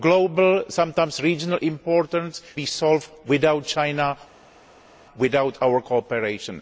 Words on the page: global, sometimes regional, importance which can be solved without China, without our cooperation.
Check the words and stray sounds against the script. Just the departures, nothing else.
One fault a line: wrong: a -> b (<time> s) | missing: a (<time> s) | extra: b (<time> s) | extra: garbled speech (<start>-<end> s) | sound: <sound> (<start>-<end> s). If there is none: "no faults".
missing: which can (2.4 s)